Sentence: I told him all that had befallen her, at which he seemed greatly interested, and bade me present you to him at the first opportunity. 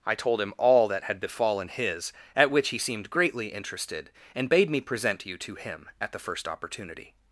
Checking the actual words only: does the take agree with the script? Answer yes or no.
no